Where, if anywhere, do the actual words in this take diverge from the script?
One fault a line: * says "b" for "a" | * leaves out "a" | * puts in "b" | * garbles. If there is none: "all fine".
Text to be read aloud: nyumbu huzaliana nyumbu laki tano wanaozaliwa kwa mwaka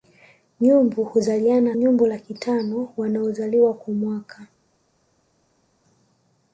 all fine